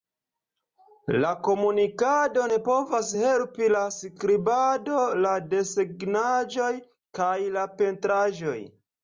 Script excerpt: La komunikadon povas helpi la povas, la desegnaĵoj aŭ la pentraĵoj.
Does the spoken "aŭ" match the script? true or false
false